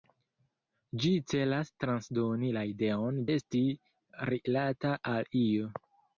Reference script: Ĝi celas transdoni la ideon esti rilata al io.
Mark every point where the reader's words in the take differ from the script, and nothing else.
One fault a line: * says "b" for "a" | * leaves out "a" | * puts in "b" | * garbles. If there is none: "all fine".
all fine